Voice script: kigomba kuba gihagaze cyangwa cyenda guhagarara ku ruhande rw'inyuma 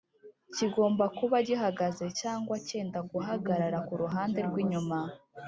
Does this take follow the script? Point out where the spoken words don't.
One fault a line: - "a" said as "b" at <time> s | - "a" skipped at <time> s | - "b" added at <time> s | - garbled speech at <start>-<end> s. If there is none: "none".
none